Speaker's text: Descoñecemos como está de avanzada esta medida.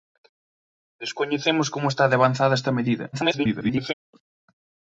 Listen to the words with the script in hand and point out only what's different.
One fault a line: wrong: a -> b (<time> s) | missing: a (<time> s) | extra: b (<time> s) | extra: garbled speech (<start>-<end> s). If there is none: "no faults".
extra: garbled speech (3.1-3.9 s)